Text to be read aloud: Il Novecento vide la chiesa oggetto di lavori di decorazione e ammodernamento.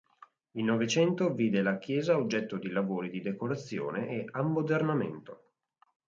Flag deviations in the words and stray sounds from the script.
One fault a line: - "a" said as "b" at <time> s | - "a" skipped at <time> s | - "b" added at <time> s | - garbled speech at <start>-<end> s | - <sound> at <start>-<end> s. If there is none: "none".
none